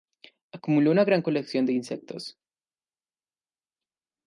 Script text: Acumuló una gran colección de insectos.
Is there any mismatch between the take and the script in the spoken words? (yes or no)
no